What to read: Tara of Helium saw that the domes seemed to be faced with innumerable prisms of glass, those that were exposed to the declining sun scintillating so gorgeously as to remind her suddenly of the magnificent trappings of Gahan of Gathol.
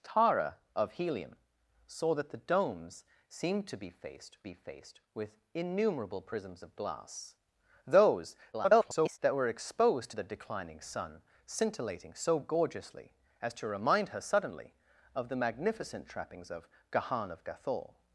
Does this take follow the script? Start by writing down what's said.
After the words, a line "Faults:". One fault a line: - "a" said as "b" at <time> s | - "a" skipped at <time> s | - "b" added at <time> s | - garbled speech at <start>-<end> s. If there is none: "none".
Tara of Helium saw that the domes seemed to be faced be faced with innumerable prisms of glass, those [garbled] that were exposed to the declining sun scintillating so gorgeously as to remind her suddenly of the magnificent trappings of Gahan of Gathol.
Faults:
- "be faced" added at 4.4 s
- garbled speech at 8.5-9.2 s